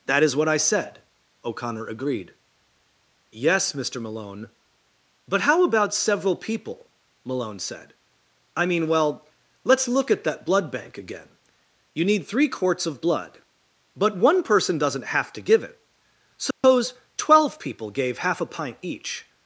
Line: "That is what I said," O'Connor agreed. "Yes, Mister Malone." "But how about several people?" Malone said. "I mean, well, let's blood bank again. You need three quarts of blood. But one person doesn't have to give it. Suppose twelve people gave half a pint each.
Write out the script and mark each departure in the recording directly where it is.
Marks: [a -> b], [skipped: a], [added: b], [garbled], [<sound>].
"That is what I said," O'Connor agreed. "Yes, Mister Malone." "But how about several people?" Malone said. "I mean, well, let's [added: look at that] blood bank again. You need three quarts of blood. But one person doesn't have to give it. Suppose [dropout] twelve people gave half a pint each.